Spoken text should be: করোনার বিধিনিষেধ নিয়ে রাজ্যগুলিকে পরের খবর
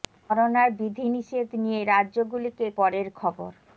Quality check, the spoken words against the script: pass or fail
pass